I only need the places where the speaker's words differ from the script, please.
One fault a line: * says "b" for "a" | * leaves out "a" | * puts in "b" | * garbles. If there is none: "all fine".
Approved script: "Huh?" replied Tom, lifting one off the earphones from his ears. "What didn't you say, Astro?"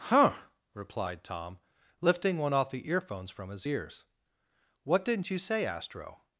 all fine